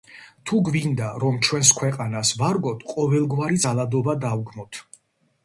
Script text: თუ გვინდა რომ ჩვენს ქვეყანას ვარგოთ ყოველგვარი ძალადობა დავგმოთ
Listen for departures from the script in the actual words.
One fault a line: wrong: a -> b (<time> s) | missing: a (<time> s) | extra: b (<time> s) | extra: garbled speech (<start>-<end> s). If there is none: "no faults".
no faults